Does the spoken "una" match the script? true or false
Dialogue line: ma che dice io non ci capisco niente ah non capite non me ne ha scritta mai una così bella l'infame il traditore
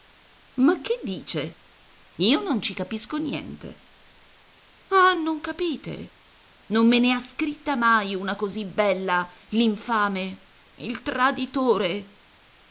true